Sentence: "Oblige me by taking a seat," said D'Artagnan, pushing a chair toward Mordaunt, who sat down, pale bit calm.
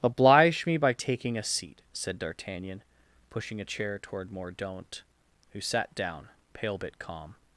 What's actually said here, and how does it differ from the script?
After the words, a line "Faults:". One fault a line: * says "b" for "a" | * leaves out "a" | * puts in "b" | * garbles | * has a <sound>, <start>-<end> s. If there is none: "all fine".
"Oblige me by taking a seat," said D'Artagnan, pushing a chair toward Mordaunt, who sat down, pale bit calm.
Faults:
all fine